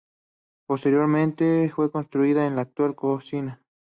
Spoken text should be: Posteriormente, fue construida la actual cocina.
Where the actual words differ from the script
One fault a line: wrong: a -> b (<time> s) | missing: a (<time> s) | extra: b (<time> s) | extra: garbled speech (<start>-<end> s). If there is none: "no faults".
no faults